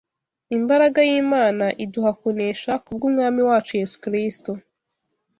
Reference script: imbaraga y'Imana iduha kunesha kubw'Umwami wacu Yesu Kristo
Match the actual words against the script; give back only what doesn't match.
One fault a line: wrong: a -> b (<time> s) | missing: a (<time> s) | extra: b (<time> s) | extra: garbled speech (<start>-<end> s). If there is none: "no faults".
no faults